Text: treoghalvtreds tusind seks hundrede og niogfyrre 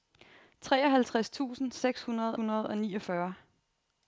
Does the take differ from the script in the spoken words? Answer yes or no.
yes